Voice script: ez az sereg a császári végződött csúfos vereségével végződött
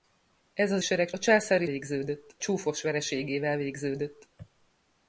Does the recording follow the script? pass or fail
pass